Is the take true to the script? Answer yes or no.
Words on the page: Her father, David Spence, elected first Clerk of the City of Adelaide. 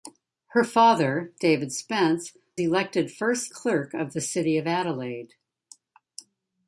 yes